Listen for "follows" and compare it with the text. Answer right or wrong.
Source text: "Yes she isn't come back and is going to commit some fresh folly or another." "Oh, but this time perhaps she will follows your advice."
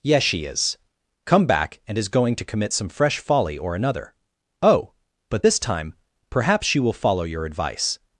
wrong